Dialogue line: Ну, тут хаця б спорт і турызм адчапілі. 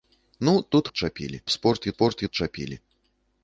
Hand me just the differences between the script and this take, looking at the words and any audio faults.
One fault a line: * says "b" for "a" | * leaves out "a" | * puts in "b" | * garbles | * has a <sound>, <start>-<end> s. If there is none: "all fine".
* says "адчапілі" for "хаця"
* says "спорт" for "турызм"